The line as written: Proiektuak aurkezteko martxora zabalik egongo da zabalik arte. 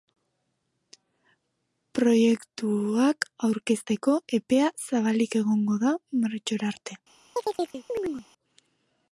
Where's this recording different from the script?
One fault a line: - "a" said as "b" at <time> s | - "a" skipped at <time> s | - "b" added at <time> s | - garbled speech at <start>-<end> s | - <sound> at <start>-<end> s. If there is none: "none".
- "martxora" said as "epea" at 4.4 s
- "zabalik" said as "martxora" at 6.2 s
- chirp at 7.4-8.3 s